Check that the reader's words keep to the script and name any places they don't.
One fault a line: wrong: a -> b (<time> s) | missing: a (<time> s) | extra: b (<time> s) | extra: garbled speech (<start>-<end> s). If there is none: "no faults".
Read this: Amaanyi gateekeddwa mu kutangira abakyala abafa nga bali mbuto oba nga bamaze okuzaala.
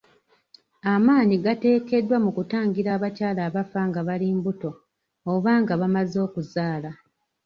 no faults